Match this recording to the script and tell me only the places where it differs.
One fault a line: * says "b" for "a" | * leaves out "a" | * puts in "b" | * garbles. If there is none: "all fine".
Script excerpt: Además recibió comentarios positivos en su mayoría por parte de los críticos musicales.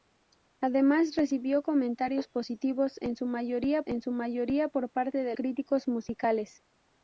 * puts in "en su mayoría"
* leaves out "los"